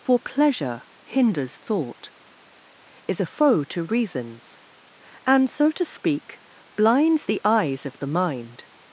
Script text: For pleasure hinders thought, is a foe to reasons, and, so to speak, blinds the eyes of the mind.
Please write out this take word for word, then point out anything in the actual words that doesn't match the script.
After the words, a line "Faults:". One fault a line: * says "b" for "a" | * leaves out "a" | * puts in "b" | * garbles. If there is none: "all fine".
For pleasure hinders thought, is a foe to reasons, and, so to speak, blinds the eyes of the mind.
Faults:
all fine